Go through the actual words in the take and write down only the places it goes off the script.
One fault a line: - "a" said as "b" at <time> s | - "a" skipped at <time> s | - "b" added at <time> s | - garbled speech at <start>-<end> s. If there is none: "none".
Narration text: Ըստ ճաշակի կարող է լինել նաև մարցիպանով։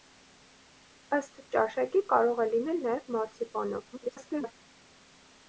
- garbled speech at 3.9-4.5 s